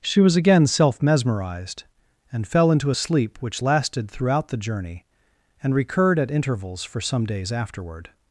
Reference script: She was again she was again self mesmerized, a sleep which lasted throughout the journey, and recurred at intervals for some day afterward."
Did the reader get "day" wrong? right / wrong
wrong